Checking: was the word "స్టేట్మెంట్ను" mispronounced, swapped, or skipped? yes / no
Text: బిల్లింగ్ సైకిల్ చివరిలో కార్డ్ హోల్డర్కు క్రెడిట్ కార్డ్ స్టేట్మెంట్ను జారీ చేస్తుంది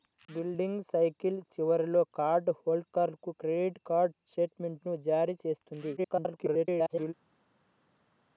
no